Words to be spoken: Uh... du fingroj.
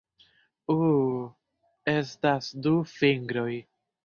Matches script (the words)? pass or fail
fail